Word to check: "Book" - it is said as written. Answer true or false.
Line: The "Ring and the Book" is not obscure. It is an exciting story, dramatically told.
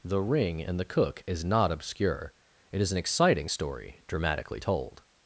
false